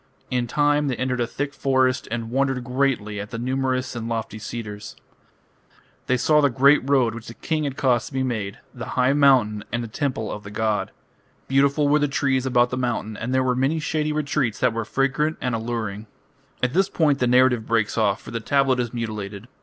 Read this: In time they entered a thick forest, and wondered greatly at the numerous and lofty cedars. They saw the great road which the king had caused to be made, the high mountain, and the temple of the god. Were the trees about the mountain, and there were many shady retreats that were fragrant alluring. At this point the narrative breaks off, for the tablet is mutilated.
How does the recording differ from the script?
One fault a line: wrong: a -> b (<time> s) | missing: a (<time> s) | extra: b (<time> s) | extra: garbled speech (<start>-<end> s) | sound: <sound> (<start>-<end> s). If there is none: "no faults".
extra: Beautiful (11.5 s)
extra: and (15.4 s)